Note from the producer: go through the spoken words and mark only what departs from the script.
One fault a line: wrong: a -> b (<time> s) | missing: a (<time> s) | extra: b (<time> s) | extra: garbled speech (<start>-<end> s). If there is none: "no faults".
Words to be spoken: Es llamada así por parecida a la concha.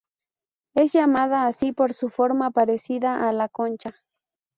extra: su forma (1.9 s)